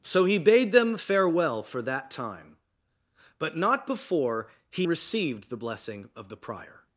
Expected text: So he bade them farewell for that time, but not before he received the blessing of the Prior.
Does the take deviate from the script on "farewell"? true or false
false